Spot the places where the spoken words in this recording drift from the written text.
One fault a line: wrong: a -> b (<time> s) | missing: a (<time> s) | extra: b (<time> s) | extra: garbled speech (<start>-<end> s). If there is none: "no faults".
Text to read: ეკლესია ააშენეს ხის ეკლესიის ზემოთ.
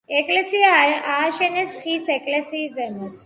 no faults